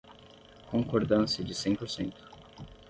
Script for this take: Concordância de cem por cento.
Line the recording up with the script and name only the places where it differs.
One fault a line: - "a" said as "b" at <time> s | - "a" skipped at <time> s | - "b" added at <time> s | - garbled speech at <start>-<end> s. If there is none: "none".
none